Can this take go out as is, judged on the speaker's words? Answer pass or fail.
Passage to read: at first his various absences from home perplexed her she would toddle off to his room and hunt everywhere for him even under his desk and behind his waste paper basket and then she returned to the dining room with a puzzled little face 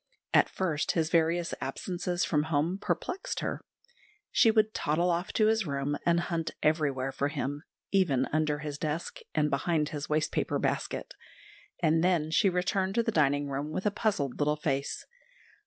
pass